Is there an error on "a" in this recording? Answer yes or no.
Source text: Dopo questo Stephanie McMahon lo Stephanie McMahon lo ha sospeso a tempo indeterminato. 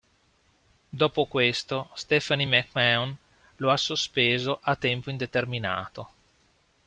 no